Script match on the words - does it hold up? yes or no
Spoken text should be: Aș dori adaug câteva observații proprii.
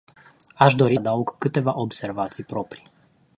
yes